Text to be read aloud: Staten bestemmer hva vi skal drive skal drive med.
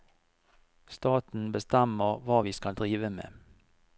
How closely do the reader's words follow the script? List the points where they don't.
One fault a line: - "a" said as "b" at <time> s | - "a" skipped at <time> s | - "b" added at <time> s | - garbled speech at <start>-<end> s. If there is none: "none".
- "skal drive" skipped at 3.1 s